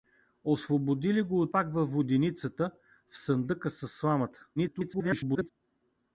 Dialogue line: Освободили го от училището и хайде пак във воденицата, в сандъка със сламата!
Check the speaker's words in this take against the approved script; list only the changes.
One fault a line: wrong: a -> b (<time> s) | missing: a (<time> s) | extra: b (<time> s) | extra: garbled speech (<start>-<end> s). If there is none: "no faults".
missing: училището и хайде (1.6 s)
extra: garbled speech (4.6-5.5 s)